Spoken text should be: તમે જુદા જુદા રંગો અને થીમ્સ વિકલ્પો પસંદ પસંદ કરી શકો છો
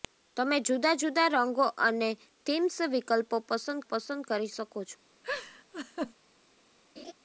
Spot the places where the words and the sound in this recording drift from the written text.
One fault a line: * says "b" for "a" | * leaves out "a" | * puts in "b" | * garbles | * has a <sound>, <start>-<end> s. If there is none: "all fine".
* has a laugh, 5.2-6.1 s
* has a laugh, 7.0-7.1 s